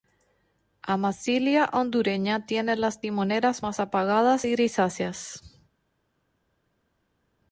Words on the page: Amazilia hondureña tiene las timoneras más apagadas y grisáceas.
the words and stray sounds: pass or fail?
pass